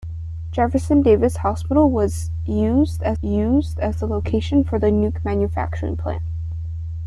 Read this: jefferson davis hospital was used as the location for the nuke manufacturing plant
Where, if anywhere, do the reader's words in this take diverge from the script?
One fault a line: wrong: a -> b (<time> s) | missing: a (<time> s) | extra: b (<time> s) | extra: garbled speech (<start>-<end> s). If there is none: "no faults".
extra: used as (3.2 s)